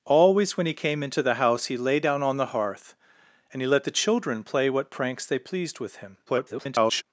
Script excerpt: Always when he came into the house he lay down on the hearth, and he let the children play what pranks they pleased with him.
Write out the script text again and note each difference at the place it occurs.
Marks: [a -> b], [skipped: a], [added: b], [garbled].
Always when he came into the house he lay down on the hearth, and he let the children play what pranks they pleased with him. [garbled]